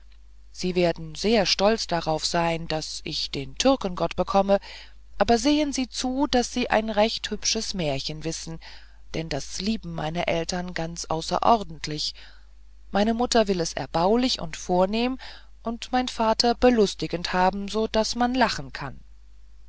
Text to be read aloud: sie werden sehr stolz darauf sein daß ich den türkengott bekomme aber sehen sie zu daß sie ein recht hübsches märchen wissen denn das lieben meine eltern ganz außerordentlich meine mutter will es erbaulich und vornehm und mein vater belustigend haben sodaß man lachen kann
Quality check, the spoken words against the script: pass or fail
pass